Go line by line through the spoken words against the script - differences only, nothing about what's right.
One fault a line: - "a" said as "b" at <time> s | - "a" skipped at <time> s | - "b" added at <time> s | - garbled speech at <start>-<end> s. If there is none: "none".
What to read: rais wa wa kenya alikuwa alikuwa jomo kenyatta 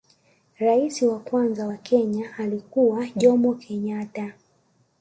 - "kwanza" added at 1.2 s
- "alikuwa" skipped at 3.1 s